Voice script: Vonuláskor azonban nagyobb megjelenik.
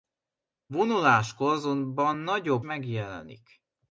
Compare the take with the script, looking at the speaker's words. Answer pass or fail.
pass